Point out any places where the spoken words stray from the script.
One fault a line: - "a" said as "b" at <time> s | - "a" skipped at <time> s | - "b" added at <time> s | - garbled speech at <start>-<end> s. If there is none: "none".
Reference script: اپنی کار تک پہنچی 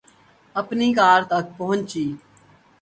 none